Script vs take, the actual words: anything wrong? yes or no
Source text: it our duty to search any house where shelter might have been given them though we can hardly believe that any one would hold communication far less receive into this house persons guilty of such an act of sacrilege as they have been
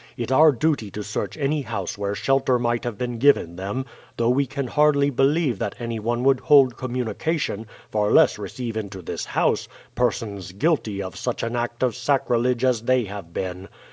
no